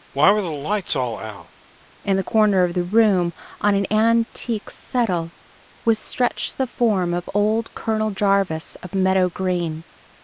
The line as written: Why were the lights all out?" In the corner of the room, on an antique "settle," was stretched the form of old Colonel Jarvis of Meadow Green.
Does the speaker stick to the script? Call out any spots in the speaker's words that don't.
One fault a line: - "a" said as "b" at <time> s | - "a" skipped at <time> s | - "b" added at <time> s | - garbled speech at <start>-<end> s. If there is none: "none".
none